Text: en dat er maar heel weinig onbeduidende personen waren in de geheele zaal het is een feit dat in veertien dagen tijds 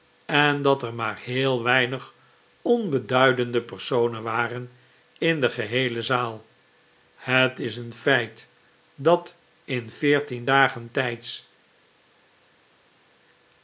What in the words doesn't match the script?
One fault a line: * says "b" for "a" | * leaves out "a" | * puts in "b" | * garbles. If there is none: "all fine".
all fine